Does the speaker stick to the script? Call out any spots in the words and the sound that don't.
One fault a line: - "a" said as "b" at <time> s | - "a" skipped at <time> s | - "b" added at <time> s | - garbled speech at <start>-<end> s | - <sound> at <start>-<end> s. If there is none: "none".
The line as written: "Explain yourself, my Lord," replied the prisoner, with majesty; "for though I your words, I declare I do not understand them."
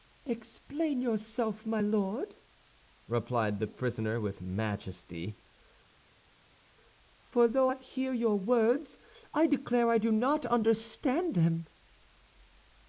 - "hear" added at 7.8 s